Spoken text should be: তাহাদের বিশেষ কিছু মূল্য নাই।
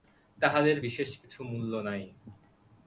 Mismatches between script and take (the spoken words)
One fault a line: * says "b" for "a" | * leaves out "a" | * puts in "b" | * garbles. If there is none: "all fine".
all fine